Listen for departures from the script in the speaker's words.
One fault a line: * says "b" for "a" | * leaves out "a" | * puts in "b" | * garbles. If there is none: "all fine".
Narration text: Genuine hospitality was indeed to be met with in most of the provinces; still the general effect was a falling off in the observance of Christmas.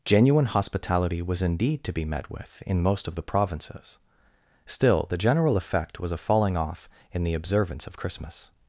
all fine